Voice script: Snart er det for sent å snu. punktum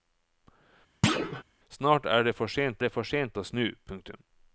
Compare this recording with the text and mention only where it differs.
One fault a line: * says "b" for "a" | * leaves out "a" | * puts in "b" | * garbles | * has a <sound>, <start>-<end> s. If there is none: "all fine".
* has a thud, 1.0-1.4 s
* puts in "det for sent"